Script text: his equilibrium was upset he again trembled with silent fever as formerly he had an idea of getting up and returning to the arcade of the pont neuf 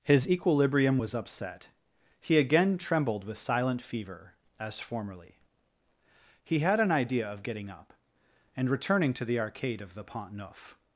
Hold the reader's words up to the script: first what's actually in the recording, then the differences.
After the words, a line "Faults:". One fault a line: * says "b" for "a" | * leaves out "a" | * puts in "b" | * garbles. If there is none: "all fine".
his equilibrium was upset he again trembled with silent fever as formerly he had an idea of getting up and returning to the arcade of the pont neuf
Faults:
all fine